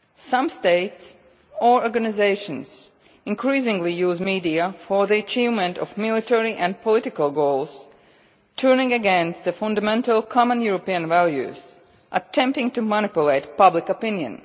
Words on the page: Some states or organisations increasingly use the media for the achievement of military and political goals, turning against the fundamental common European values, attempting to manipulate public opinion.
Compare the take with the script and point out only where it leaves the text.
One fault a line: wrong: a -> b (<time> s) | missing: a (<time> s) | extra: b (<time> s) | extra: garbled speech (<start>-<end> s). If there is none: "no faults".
no faults